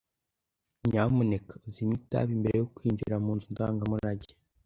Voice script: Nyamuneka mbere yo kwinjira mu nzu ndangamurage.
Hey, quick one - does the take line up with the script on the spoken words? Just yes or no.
no